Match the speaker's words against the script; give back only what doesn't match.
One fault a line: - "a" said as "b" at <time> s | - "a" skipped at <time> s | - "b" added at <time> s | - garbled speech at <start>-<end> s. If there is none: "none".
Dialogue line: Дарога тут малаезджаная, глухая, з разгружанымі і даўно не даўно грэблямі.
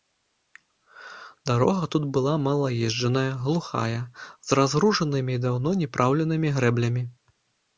- "была" added at 2.1 s
- "даўно" said as "праўленымі" at 6.0 s